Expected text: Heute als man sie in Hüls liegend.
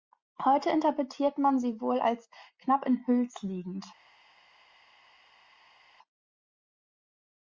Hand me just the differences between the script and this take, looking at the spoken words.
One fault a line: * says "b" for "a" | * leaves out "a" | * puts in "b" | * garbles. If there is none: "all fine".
* says "interpretiert" for "als"
* puts in "wohl als knapp"